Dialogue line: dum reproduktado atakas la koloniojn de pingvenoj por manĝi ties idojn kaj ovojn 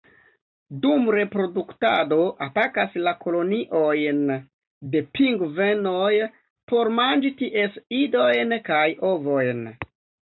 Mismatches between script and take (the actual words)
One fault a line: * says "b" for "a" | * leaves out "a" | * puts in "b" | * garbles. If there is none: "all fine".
all fine